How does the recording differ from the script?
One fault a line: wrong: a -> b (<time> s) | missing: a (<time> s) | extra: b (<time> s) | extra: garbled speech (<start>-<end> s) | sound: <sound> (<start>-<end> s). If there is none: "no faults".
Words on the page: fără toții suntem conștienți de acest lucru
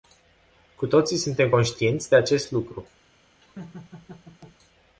wrong: fără -> cu (0.8 s)
sound: laugh (3.4-4.6 s)